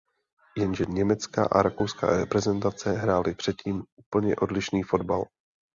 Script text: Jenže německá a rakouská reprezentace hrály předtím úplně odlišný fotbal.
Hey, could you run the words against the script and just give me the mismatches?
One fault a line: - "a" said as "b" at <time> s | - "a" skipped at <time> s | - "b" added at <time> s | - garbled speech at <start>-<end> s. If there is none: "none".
none